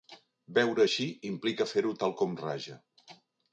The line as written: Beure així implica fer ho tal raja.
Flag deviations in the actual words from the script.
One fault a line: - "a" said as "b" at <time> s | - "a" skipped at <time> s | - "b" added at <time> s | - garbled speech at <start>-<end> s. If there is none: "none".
- "com" added at 2.2 s